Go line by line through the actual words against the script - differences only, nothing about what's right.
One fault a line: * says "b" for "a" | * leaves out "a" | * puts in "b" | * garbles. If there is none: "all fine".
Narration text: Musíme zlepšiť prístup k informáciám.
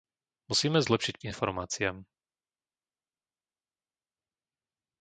* leaves out "prístup"